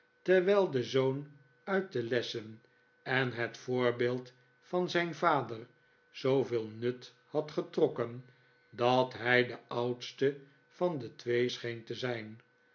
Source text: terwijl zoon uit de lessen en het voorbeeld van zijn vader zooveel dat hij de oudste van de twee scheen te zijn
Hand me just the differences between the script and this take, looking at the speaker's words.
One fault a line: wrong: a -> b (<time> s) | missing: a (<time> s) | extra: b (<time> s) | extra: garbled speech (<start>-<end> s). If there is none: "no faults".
extra: de (0.7 s)
extra: nut had getrokken (6.7 s)